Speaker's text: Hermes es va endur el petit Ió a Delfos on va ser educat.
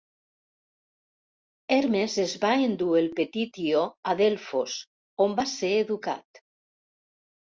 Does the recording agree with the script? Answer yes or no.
yes